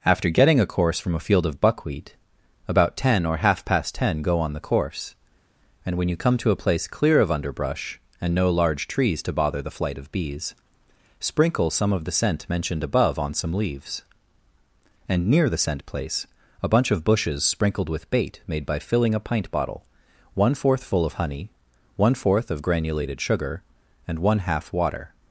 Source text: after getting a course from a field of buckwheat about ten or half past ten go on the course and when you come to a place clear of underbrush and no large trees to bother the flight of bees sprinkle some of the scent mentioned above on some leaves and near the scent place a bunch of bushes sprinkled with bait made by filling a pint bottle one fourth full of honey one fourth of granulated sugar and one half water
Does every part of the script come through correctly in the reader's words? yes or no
yes